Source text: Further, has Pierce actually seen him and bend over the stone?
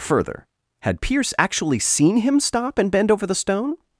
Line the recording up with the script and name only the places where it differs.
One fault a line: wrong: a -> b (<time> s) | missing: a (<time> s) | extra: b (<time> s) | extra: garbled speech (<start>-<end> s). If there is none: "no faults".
wrong: has -> had (0.8 s)
extra: stop (2.4 s)